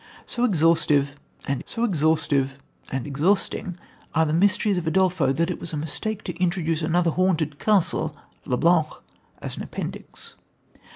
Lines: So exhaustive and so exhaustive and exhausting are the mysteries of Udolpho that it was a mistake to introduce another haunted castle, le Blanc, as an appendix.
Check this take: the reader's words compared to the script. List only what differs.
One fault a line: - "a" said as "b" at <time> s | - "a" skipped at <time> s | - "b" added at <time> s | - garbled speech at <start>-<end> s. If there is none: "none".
none